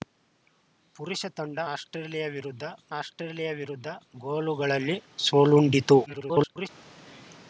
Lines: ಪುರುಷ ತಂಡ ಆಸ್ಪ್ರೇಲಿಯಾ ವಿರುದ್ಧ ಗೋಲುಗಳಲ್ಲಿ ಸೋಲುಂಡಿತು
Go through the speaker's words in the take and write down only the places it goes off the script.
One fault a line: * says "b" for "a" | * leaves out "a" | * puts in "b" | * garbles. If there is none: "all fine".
* puts in "ಆಸ್ಪ್ರೇಲಿಯಾ ವಿರುದ್ಧ"
* garbles